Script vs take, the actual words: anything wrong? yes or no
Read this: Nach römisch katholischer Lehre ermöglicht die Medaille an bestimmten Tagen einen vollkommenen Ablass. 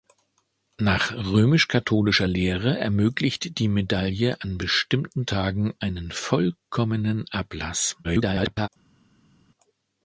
yes